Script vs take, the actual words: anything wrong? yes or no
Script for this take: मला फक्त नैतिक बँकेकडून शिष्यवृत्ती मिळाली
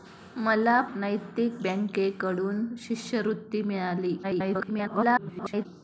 yes